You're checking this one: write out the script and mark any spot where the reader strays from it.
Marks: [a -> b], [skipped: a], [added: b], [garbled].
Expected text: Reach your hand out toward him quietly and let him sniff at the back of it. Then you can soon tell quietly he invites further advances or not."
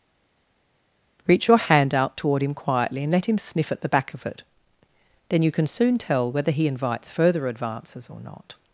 Reach your hand out toward him quietly and let him sniff at the back of it. Then you can soon tell [quietly -> whether] he invites further advances or not."